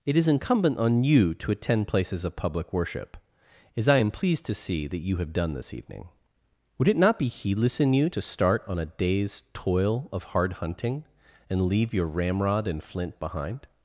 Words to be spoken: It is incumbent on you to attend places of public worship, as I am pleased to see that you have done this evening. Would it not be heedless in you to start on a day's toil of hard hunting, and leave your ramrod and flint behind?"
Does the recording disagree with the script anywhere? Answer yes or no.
no